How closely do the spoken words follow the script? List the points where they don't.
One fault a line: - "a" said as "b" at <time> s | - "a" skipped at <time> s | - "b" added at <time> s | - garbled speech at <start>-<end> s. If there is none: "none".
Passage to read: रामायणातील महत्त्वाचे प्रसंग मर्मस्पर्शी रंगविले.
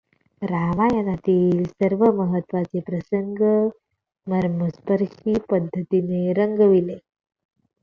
- "सर्व" added at 1.6 s
- "पद्धतीने" added at 5.5 s